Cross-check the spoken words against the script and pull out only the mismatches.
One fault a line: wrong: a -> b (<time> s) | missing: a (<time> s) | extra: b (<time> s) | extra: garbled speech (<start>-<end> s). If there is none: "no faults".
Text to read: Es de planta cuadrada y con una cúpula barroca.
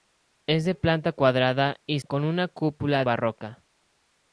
no faults